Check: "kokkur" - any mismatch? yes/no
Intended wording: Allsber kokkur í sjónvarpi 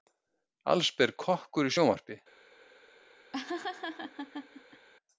no